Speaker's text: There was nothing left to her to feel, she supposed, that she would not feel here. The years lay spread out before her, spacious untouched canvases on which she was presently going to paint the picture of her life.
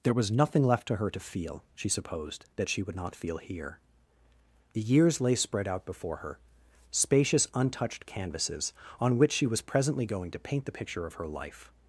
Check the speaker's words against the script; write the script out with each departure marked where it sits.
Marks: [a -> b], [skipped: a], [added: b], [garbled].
There was nothing left to her to feel, she supposed, that she would not feel here. The years lay spread out before her, spacious untouched canvases on which she was presently going to paint the picture of her life.